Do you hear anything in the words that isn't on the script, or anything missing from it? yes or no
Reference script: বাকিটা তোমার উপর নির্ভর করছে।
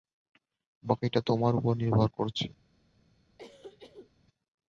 no